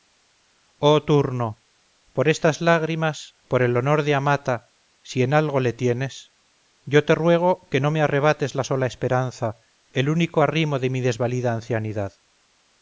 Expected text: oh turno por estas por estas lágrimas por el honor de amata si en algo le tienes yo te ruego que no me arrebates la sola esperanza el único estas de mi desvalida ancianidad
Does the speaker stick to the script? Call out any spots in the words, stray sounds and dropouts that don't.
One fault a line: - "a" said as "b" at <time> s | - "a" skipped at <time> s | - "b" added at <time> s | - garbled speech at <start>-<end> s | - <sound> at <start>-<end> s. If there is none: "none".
- "por estas" skipped at 2.6 s
- "estas" said as "arrimo" at 10.4 s